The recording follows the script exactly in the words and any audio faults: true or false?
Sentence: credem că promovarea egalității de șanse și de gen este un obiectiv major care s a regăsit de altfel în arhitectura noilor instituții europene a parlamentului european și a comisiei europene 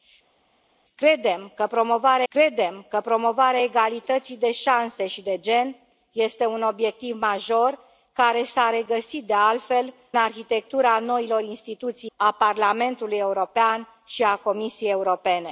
false